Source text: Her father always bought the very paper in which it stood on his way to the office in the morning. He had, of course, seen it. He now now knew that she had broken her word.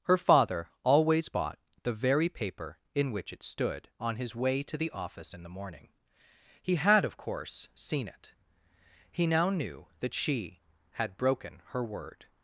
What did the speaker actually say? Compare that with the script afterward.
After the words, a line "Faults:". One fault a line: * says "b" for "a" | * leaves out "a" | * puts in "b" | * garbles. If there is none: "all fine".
Her father always bought the very paper in which it stood on his way to the office in the morning. He had, of course, seen it. He now knew that she had broken her word.
Faults:
* leaves out "now"